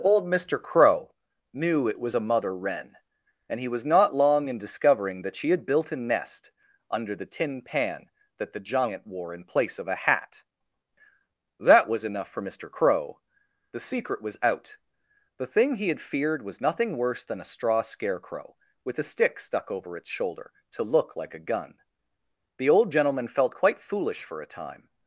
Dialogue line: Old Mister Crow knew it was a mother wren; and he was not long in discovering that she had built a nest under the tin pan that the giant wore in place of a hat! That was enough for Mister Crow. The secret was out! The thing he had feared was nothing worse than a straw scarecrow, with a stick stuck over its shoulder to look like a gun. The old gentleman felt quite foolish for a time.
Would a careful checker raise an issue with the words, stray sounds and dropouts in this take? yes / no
no